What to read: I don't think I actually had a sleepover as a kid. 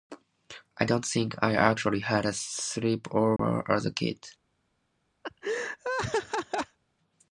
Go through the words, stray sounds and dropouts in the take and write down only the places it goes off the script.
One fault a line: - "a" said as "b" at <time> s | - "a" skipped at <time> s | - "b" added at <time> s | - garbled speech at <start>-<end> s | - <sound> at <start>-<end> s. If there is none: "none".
- dropout at 3.4-3.4 s
- laugh at 5.2-6.8 s